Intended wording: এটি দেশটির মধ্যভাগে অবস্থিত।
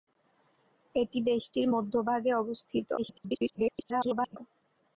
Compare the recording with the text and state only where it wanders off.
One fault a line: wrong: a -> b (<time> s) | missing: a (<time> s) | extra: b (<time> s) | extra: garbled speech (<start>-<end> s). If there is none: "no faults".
extra: garbled speech (3.0-4.4 s)